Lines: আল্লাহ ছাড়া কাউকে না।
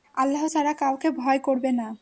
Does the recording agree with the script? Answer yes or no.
no